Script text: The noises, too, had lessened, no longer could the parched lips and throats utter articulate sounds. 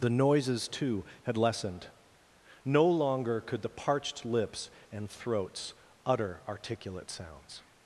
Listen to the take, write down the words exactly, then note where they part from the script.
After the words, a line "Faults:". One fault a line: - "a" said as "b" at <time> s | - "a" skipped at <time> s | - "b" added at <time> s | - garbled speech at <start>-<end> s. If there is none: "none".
The noises, too, had lessened, no longer could the parched lips and throats utter articulate sounds.
Faults:
none